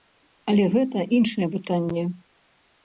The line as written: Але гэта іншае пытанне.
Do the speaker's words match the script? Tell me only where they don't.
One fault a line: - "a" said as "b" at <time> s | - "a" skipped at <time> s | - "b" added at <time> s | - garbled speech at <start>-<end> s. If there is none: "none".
none